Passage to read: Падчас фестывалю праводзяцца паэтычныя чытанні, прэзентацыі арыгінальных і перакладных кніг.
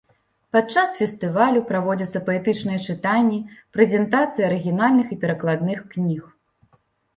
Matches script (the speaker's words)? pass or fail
pass